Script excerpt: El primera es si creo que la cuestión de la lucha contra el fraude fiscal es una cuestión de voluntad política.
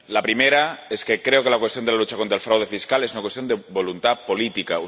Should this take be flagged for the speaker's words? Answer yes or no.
yes